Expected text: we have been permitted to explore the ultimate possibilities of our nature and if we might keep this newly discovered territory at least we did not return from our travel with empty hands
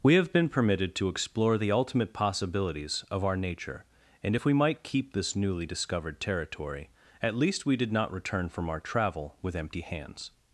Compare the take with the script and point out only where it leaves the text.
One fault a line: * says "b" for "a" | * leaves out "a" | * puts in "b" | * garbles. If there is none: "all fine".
all fine